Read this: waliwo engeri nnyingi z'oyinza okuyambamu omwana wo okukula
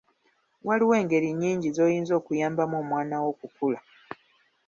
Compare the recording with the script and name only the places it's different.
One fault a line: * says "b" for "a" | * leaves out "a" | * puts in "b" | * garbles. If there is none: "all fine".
all fine